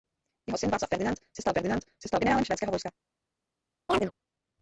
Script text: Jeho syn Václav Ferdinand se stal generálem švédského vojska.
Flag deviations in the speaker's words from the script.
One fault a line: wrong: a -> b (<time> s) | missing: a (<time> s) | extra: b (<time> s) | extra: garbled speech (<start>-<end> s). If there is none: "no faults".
extra: Ferdinand se stal (1.5 s)